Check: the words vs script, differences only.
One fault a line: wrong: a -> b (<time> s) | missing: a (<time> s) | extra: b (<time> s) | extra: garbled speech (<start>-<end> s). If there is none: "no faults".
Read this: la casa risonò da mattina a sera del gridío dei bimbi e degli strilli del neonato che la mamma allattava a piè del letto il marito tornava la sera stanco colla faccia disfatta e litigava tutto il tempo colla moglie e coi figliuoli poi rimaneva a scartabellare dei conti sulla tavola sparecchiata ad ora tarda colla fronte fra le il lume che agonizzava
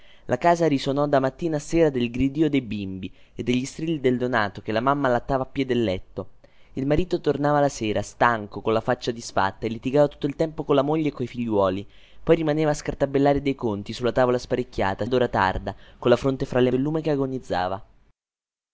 no faults